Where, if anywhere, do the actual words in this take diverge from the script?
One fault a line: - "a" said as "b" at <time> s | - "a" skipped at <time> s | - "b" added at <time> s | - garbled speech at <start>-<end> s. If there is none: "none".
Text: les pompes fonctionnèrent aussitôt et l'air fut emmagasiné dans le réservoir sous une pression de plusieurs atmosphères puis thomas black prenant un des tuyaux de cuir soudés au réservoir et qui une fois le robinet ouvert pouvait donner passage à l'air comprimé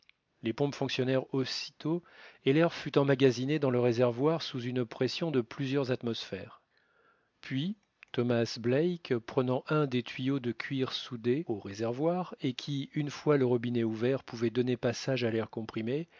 none